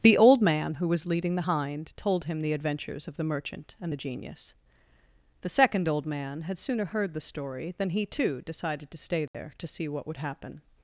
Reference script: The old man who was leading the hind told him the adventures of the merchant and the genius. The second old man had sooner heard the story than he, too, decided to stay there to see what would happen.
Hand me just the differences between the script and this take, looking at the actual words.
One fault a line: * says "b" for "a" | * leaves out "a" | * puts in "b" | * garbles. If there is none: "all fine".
all fine